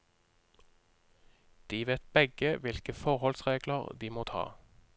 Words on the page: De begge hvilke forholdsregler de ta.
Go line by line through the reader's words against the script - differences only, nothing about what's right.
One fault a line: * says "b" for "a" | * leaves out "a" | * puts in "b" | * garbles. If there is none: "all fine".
* puts in "vet"
* puts in "må"